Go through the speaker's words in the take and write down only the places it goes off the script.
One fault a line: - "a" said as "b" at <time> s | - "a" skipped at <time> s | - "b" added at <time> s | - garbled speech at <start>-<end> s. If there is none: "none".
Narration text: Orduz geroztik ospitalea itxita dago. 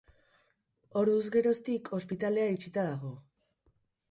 none